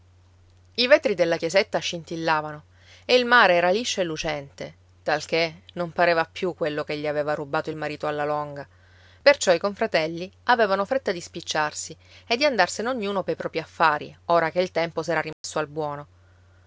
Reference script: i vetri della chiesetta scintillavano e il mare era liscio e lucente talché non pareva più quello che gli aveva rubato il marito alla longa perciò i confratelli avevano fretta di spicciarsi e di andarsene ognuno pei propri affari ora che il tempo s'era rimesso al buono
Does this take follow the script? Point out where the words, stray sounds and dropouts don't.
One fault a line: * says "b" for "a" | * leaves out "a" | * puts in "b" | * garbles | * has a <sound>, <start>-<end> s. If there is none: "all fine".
* has a dropout, 15.3-15.4 s